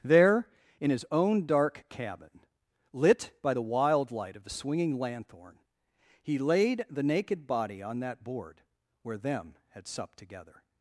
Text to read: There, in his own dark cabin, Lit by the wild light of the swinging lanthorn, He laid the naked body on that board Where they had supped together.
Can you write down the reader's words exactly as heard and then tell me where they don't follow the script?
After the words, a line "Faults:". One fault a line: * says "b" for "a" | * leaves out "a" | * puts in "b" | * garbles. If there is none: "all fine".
There, in his own dark cabin, Lit by the wild light of the swinging lanthorn, He laid the naked body on that board Where them had supped together.
Faults:
* says "them" for "they"